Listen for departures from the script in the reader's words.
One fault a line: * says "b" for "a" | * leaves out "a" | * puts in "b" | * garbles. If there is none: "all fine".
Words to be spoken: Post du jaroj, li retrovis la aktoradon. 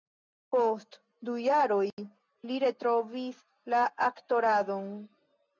all fine